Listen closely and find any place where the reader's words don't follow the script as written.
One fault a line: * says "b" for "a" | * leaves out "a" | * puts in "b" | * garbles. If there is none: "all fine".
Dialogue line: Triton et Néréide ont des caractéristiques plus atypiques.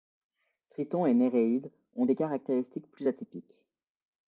all fine